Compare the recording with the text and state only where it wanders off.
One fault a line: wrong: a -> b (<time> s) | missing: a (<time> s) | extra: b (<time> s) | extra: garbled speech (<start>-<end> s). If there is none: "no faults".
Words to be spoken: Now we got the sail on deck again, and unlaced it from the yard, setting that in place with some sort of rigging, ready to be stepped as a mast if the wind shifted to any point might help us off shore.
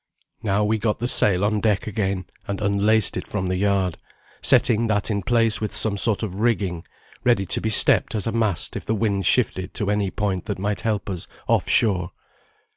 extra: that (10.5 s)